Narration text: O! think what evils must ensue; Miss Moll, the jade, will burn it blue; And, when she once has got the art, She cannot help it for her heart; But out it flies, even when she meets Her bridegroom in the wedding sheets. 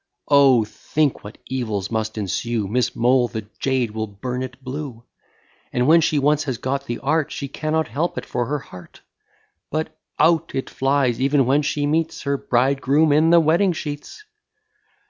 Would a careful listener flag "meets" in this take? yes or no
no